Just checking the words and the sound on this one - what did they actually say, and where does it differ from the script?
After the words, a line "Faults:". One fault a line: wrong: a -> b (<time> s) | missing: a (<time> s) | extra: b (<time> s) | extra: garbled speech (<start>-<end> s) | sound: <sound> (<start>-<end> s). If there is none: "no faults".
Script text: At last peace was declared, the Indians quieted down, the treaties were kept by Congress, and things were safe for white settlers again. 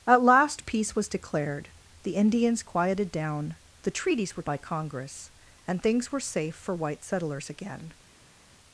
At last peace was declared, the Indians quieted down, the treaties were by Congress, and things were safe for white settlers again.
Faults:
missing: kept (4.4 s)